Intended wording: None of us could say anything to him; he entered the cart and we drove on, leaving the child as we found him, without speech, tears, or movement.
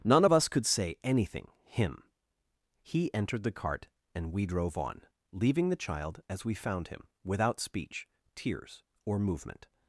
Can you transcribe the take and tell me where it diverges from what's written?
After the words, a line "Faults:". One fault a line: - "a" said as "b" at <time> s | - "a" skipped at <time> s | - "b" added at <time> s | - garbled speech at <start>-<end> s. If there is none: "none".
None of us could say anything him; he entered the cart and we drove on, leaving the child as we found him, without speech, tears, or movement.
Faults:
- "to" skipped at 1.5 s